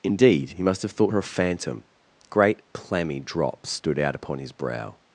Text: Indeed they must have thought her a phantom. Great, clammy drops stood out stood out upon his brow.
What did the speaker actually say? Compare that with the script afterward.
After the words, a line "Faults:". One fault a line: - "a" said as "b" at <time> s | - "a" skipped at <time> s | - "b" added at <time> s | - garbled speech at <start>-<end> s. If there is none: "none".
Indeed he must have thought her a phantom. Great, clammy drops stood out upon his brow.
Faults:
- "they" said as "he" at 0.5 s
- "stood out" skipped at 4.2 s